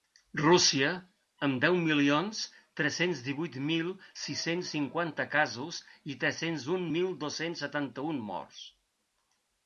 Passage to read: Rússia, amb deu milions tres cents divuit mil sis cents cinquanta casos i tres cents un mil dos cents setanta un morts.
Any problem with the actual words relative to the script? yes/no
no